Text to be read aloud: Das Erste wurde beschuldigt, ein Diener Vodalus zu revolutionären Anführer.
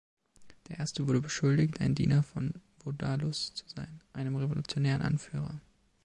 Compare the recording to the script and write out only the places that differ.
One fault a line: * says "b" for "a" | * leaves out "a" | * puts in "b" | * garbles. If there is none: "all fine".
* says "Der" for "Das"
* puts in "von"
* puts in "sein einem"